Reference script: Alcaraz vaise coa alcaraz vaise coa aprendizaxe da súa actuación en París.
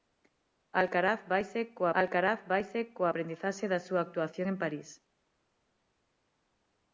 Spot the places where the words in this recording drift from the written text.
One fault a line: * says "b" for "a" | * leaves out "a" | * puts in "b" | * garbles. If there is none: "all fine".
all fine